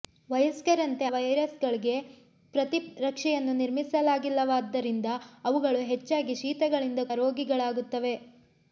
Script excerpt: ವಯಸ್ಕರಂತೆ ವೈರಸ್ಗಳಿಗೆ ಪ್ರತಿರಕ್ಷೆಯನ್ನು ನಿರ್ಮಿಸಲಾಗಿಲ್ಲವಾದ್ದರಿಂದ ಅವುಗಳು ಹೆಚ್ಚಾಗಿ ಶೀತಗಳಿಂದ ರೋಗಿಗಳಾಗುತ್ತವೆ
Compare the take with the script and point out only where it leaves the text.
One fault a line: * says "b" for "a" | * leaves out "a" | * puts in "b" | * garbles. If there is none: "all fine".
all fine